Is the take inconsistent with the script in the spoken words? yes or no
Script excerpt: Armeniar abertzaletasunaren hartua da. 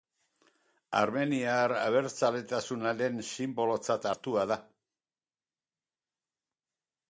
yes